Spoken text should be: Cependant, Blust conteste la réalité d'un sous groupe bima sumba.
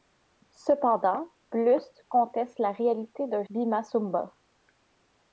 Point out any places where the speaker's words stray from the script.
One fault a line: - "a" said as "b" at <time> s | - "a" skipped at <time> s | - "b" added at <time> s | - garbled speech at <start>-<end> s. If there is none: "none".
- "sous groupe" skipped at 3.4 s